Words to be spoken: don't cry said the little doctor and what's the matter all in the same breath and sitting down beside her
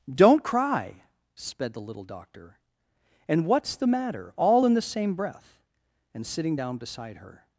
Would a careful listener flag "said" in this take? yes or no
yes